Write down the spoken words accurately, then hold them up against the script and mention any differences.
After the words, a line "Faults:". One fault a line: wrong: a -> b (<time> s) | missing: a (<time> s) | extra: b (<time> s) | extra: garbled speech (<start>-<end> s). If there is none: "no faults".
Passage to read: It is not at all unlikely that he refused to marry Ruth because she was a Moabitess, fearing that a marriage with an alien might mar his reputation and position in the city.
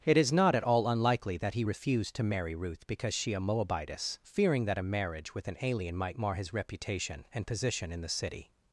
It is not at all unlikely that he refused to marry Ruth because she a Moabitess, fearing that a marriage with an alien might mar his reputation and position in the city.
Faults:
missing: was (3.3 s)